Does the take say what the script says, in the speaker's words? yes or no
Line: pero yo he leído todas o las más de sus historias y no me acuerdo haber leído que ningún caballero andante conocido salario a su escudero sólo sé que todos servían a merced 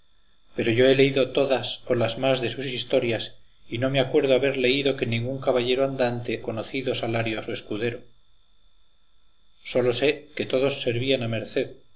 yes